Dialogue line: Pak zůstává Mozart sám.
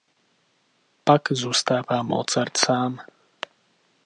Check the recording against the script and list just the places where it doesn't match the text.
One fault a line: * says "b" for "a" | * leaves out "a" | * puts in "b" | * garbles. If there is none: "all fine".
all fine